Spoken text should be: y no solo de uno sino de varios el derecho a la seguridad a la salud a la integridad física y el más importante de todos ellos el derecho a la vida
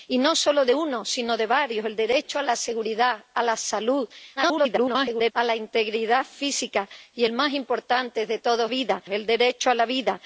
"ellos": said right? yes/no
no